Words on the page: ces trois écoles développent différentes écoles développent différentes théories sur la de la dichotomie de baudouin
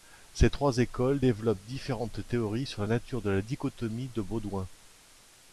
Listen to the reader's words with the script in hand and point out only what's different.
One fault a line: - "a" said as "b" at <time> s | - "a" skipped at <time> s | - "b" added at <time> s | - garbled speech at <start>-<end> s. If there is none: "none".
- "écoles développent différentes" skipped at 2.2 s
- "nature" added at 2.9 s